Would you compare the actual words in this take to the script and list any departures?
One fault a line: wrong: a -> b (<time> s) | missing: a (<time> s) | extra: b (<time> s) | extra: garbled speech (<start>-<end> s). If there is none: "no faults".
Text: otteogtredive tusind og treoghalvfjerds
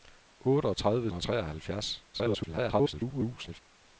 missing: tusind (1.1 s)
extra: garbled speech (2.1-3.6 s)